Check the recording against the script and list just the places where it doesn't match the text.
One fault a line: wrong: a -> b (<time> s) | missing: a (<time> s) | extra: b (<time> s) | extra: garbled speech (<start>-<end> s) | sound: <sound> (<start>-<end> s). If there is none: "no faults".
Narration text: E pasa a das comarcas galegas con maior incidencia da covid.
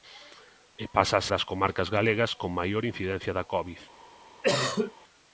sound: cough (4.4-4.9 s)